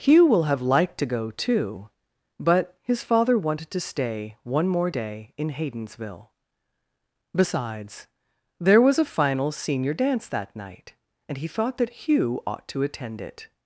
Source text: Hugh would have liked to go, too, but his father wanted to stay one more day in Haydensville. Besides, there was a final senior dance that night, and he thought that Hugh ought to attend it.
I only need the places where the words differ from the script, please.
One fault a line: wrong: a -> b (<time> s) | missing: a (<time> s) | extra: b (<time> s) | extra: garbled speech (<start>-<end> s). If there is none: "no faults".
wrong: would -> will (0.2 s)